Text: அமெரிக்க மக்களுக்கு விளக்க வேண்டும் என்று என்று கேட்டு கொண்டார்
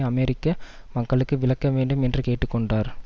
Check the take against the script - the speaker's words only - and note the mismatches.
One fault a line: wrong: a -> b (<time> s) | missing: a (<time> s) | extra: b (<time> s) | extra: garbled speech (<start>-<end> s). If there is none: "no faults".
missing: என்று (2.2 s)